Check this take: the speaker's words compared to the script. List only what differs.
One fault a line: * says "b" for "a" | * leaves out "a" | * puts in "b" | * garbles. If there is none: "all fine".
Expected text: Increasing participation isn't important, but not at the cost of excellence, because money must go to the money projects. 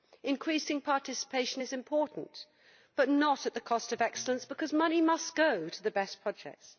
* says "is" for "isn't"
* says "best" for "money"